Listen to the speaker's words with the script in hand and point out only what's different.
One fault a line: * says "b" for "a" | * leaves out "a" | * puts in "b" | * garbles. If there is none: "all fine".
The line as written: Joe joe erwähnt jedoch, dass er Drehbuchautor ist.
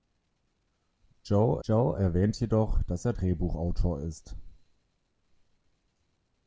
all fine